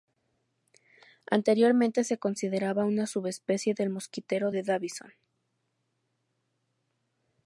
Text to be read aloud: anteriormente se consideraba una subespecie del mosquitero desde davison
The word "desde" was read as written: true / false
false